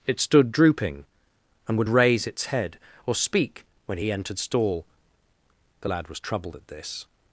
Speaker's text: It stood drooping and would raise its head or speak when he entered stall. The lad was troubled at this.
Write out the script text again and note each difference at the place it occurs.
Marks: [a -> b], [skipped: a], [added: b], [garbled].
It stood drooping and would raise its head or speak when he entered stall. The lad was troubled at this.